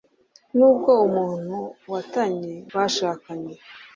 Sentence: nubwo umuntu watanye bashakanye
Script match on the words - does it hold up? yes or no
yes